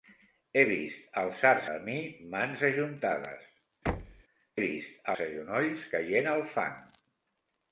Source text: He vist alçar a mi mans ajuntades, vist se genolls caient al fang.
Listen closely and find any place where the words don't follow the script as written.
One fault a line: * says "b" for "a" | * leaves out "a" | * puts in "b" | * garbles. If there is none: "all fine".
all fine